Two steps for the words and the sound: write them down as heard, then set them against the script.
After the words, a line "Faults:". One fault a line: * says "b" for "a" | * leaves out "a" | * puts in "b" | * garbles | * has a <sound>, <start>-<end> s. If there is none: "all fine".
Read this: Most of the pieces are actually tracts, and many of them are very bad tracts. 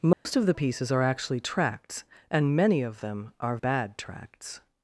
Most of the pieces are actually tracts, and many of them are bad tracts.
Faults:
* has a dropout, 0.1-0.3 s
* leaves out "very"